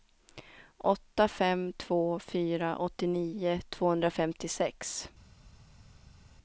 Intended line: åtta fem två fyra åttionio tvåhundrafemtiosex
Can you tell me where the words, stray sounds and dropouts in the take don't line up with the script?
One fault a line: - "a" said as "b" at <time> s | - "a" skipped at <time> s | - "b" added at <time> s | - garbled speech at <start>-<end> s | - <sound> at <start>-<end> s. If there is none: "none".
none